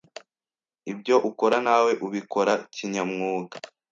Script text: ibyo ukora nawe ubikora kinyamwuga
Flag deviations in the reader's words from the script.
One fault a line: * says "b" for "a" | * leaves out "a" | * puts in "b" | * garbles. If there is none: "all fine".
all fine